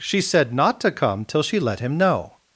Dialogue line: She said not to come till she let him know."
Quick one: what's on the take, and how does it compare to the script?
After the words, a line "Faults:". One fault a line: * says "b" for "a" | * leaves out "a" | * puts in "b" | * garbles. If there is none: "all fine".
She said not to come till she let him know."
Faults:
all fine